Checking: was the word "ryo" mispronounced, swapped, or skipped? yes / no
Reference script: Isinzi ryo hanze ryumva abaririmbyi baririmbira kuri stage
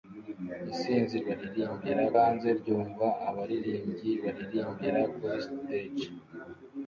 yes